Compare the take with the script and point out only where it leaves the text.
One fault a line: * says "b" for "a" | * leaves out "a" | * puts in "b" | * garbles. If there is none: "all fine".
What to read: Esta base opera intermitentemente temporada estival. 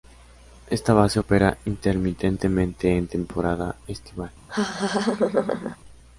* puts in "en"